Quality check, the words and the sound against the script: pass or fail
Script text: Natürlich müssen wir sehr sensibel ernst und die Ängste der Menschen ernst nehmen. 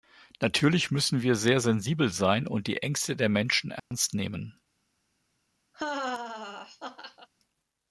fail